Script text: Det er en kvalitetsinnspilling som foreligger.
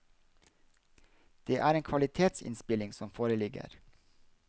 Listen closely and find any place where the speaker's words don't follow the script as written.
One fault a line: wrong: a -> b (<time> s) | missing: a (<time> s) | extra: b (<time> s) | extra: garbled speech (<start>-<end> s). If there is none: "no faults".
no faults